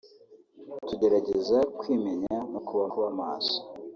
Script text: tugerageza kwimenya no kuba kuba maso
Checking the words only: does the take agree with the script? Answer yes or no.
yes